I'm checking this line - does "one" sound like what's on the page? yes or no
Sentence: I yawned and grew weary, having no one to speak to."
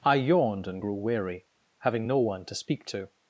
yes